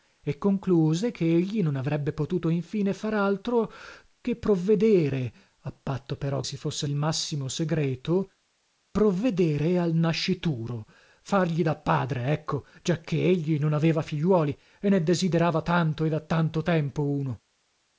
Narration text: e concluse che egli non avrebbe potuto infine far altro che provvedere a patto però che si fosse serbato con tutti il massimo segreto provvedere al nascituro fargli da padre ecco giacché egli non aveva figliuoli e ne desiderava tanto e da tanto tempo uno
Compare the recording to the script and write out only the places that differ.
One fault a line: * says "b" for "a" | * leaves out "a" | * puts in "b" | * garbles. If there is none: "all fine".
* leaves out "che"
* leaves out "serbato con tutti"